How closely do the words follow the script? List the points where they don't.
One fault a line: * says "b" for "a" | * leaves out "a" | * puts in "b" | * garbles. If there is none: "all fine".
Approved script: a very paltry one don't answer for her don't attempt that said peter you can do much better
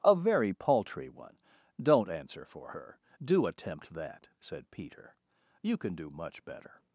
* says "do" for "don't"